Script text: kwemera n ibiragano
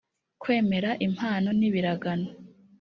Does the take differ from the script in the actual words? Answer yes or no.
yes